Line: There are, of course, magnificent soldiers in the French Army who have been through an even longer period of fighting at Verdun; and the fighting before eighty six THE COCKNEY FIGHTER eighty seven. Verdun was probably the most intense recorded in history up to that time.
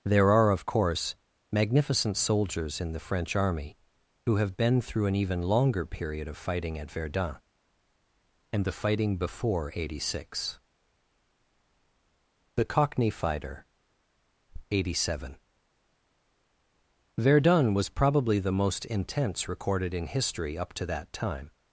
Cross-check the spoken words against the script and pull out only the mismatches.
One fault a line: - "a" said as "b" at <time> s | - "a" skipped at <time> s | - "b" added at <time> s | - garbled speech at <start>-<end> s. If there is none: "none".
none